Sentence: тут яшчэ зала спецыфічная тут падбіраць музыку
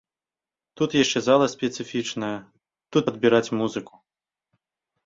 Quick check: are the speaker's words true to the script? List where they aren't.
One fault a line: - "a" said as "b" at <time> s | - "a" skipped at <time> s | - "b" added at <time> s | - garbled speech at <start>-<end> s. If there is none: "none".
none